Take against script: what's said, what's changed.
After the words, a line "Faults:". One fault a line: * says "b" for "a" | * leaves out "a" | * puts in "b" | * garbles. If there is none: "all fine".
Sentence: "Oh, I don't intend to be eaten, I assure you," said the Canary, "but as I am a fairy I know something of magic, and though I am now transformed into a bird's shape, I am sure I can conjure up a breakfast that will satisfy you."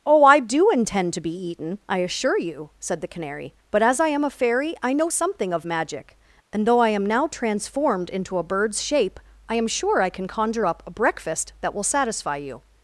"Oh, I do intend to be eaten, I assure you," said the Canary, "but as I am a fairy I know something of magic, and though I am now transformed into a bird's shape, I am sure I can conjure up a breakfast that will satisfy you."
Faults:
* says "do" for "don't"